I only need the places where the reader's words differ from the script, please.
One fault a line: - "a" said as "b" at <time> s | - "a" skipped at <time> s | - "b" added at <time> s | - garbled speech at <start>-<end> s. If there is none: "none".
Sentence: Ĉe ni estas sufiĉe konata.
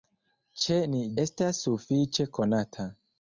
none